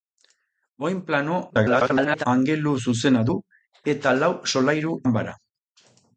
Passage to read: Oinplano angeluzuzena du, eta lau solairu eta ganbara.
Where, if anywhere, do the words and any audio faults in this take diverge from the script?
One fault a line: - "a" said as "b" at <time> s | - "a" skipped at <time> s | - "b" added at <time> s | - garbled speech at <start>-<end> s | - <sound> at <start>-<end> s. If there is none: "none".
- garbled speech at 1.5-2.3 s
- "eta" skipped at 5.0 s